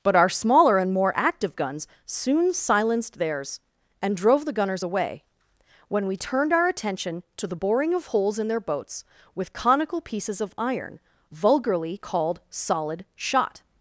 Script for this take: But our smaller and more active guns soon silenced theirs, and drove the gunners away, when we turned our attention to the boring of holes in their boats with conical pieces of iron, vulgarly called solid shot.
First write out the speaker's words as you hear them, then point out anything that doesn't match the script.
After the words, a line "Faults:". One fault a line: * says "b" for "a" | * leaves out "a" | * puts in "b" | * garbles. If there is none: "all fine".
But our smaller and more active guns soon silenced theirs, and drove the gunners away, when we turned our attention to the boring of holes in their boats with conical pieces of iron, vulgarly called solid shot.
Faults:
all fine